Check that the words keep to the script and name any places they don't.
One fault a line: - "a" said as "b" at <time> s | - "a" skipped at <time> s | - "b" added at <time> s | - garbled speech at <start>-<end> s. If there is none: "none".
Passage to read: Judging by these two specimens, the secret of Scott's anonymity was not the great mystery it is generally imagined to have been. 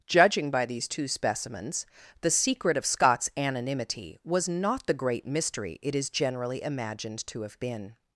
none